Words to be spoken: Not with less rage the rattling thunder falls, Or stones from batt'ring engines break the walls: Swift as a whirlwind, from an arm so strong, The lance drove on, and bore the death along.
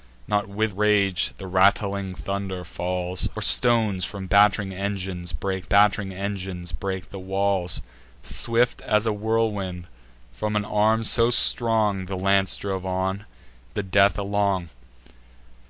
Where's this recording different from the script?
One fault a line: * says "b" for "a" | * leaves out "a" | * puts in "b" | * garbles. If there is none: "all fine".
* leaves out "less"
* puts in "batt'ring engines break"
* leaves out "and bore"